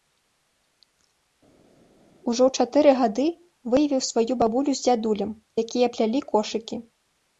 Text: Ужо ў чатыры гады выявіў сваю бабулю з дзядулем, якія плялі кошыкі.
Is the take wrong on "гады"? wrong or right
right